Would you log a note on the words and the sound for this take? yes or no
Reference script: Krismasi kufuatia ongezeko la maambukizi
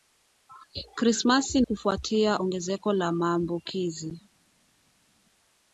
no